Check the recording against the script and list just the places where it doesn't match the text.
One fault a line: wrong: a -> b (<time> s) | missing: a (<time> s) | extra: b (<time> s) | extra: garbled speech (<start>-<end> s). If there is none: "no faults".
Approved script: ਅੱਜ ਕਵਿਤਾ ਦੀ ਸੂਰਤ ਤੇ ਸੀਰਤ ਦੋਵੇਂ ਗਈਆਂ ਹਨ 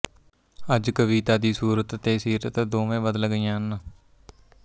extra: ਬਦਲ (3.0 s)